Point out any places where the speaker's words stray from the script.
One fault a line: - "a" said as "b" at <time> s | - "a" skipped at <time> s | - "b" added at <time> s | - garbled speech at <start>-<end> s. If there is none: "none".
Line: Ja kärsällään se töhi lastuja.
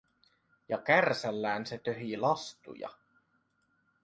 none